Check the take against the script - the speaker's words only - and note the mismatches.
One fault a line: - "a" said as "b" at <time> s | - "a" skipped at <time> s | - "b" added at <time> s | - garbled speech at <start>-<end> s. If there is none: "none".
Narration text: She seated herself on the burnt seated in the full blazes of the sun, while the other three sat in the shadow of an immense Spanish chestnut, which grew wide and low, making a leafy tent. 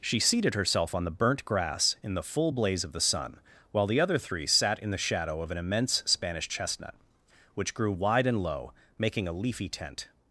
- "seated" said as "grass" at 1.4 s
- "blazes" said as "blaze" at 2.5 s